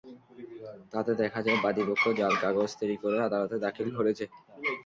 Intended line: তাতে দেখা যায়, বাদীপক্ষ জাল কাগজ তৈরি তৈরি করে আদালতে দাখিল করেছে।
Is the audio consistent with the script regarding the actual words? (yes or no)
no